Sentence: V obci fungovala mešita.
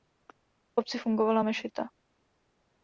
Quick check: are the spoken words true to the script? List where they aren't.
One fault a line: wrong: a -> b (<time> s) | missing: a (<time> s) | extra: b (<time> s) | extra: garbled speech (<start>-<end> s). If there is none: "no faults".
no faults